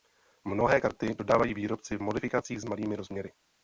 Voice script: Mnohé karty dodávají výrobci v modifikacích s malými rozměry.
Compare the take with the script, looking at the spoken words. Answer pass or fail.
pass